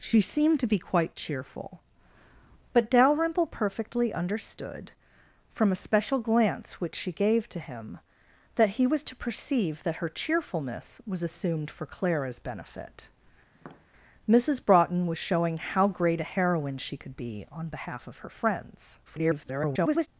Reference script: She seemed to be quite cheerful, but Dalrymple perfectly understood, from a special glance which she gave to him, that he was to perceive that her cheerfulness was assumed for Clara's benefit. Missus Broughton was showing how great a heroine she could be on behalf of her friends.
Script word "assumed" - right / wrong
right